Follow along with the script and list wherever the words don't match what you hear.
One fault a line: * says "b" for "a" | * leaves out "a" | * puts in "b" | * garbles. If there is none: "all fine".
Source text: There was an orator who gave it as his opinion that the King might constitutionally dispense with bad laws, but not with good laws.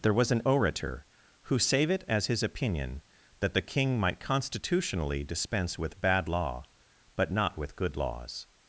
* says "save" for "gave"
* says "law" for "laws"